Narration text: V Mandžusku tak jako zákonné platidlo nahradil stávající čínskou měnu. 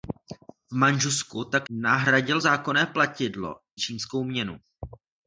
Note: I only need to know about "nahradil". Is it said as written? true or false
false